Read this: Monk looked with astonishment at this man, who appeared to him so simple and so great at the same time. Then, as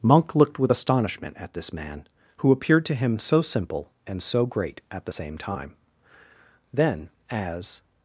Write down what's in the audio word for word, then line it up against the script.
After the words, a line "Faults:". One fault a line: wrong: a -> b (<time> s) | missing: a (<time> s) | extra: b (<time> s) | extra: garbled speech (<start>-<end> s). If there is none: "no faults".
Monk looked with astonishment at this man, who appeared to him so simple and so great at the same time. Then, as
Faults:
no faults